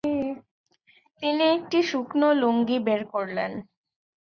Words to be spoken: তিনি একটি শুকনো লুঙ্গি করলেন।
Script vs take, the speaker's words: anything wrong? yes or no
yes